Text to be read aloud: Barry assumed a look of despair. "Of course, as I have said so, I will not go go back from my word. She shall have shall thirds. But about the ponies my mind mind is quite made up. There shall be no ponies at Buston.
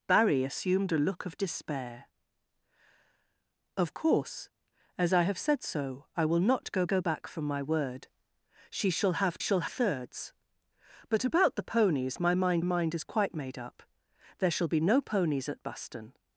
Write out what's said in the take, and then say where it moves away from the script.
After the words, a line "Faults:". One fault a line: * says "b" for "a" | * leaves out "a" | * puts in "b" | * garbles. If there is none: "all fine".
Barry assumed a look of despair. "Of course, as I have said so, I will not go go back from my word. She shall have shall thirds. But about the ponies my mind mind is quite made up. There shall be no ponies at Buston.
Faults:
all fine